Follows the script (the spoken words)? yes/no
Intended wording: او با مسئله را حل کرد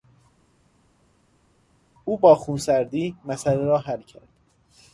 no